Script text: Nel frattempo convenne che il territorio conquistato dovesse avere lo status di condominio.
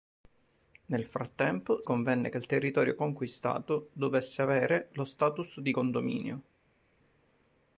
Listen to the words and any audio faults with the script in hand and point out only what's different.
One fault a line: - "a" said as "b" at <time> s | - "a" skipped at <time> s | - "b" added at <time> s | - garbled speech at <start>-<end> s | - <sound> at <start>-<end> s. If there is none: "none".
none